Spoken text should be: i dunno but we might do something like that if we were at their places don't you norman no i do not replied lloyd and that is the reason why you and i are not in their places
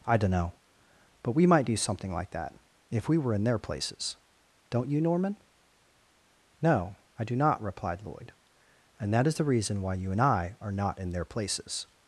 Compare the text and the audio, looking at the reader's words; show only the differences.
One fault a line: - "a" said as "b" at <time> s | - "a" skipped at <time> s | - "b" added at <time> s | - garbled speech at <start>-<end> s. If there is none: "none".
- "at" said as "in" at 3.3 s